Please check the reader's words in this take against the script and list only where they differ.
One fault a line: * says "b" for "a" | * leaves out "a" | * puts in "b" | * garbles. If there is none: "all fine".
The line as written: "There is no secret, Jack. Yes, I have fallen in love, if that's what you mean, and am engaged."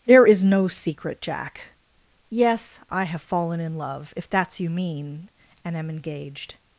* leaves out "what"